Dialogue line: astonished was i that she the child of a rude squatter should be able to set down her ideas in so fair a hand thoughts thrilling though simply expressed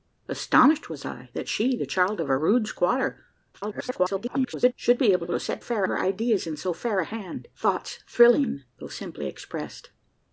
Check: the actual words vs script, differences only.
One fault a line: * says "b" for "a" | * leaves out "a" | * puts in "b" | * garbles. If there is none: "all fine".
* garbles
* puts in "able"
* says "fair" for "down"